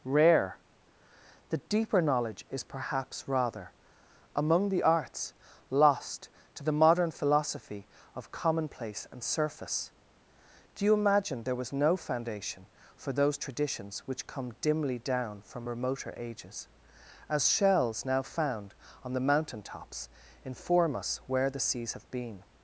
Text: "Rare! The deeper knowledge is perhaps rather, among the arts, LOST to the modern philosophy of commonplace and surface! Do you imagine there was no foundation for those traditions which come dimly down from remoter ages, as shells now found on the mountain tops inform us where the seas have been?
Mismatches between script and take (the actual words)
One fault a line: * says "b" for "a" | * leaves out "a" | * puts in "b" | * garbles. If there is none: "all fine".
all fine